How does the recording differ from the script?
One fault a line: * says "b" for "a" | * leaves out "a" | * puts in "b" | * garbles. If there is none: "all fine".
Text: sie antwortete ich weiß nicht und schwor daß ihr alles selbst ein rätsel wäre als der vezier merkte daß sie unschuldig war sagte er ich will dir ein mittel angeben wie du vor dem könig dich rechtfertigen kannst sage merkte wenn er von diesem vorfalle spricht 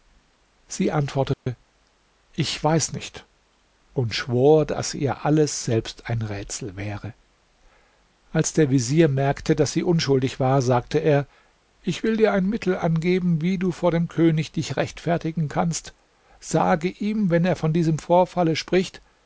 * says "ihm" for "merkte"